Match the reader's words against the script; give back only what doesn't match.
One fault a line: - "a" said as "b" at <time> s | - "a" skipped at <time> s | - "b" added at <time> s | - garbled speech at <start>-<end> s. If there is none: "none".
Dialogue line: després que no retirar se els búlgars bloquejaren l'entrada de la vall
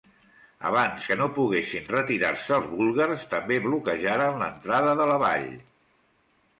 - "després" said as "abans" at 0.7 s
- "poguessin" added at 1.4 s
- "també" added at 3.3 s